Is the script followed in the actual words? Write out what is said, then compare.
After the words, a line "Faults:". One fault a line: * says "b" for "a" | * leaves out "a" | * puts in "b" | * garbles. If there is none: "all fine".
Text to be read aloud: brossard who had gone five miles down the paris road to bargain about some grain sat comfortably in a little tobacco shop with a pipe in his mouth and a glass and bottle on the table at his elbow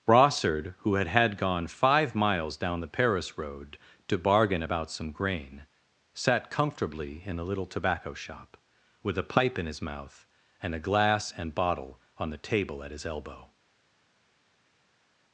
brossard who had had gone five miles down the paris road to bargain about some grain sat comfortably in a little tobacco shop with a pipe in his mouth and a glass and bottle on the table at his elbow
Faults:
* puts in "had"